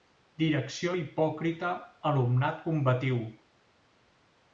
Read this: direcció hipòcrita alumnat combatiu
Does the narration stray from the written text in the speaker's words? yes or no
no